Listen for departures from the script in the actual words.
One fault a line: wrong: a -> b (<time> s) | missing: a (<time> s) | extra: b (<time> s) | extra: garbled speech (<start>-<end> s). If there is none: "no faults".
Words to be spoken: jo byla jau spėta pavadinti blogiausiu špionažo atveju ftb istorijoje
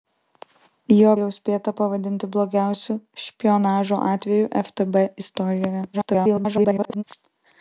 missing: byla (1.1 s)
extra: garbled speech (5.9-7.0 s)